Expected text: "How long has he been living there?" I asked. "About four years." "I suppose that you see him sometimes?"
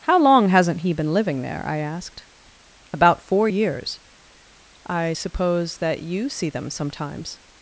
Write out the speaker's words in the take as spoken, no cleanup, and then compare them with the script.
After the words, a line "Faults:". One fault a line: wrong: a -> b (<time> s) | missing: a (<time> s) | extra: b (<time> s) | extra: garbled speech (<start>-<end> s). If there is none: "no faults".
"How long hasn't he been living there?" I asked. "About four years." "I suppose that you see them sometimes?"
Faults:
wrong: has -> hasn't (0.5 s)
wrong: him -> them (6.5 s)